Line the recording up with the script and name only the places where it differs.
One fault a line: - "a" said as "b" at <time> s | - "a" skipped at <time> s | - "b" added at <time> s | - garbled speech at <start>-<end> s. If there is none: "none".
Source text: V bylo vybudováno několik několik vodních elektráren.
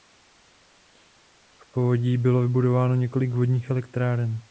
- "povodí" added at 1.7 s
- "několik" skipped at 3.3 s